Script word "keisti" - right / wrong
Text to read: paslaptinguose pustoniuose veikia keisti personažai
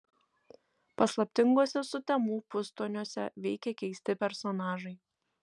right